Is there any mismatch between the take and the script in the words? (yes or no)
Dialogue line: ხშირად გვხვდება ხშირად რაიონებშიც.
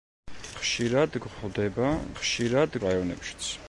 no